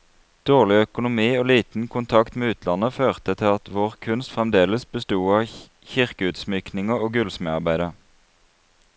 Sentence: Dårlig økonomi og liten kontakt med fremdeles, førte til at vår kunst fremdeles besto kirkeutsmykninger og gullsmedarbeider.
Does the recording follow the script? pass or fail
fail